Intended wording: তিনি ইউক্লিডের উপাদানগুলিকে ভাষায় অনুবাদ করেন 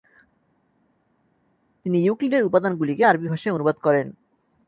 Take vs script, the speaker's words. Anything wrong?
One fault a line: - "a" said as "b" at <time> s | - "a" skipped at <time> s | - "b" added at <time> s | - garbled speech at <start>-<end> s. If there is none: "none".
- "আরবি" added at 3.0 s